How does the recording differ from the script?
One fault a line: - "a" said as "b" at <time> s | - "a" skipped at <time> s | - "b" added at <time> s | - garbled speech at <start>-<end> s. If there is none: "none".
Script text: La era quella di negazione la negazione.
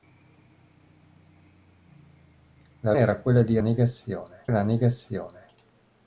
none